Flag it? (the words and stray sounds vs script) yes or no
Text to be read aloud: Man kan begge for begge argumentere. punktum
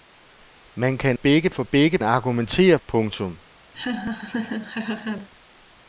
yes